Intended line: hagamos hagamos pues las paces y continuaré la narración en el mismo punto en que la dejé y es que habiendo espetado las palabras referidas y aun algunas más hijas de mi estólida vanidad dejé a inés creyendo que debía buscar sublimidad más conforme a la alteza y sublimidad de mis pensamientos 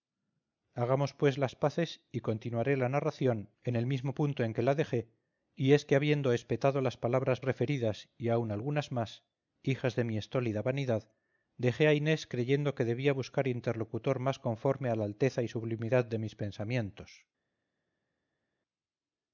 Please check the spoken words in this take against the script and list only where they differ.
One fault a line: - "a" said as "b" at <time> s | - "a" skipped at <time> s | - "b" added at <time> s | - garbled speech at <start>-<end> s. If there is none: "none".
- "hagamos" skipped at 1.1 s
- "sublimidad" said as "interlocutor" at 13.5 s